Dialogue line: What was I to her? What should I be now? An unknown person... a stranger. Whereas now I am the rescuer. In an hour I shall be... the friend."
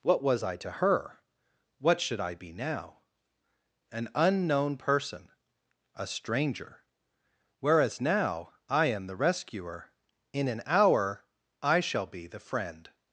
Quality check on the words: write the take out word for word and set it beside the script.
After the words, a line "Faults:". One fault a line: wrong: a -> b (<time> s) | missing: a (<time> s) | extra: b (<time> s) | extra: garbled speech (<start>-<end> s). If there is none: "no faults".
What was I to her? What should I be now? An unknown person... a stranger. Whereas now I am the rescuer. In an hour I shall be... the friend."
Faults:
no faults